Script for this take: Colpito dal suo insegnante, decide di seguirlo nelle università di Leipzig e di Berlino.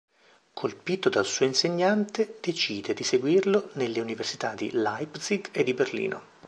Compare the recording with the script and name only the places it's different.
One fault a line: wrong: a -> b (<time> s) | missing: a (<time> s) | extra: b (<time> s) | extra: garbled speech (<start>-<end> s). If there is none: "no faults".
no faults